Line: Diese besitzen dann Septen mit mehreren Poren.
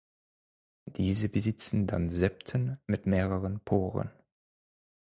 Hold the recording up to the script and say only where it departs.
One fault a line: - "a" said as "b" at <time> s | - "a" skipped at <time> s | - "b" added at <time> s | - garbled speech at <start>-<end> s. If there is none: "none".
none